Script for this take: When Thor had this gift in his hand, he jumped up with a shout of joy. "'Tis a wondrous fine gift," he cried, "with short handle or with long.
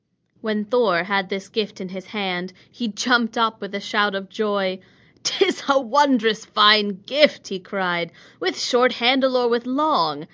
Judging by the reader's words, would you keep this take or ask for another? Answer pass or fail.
pass